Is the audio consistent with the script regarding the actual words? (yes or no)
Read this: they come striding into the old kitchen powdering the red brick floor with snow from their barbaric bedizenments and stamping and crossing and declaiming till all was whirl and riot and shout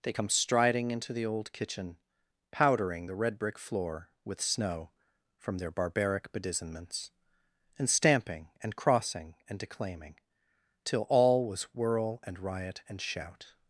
yes